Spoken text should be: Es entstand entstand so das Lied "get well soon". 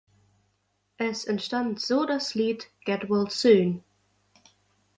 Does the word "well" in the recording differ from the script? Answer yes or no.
no